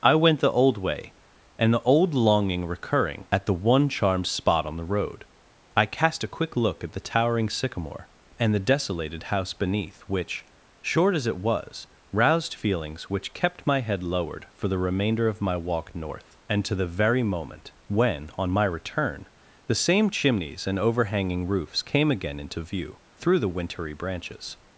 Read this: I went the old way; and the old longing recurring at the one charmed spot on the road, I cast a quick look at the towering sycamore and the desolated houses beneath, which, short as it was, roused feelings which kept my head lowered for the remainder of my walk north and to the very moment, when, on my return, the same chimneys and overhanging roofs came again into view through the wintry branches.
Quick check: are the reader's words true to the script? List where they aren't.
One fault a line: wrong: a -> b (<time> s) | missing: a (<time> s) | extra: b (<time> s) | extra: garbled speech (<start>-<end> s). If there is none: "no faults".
wrong: houses -> house (9.3 s)